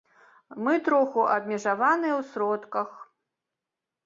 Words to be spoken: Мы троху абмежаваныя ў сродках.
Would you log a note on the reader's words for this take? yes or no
no